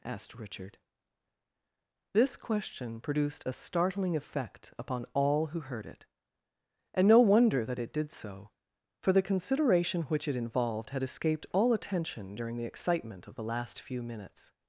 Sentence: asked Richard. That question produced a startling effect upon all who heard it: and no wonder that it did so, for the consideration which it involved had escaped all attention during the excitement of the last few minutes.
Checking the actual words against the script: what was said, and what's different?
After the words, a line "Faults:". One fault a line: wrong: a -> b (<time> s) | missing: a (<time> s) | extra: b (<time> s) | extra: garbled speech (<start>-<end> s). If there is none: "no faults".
asked Richard. This question produced a startling effect upon all who heard it: and no wonder that it did so, for the consideration which it involved had escaped all attention during the excitement of the last few minutes.
Faults:
wrong: That -> This (2.1 s)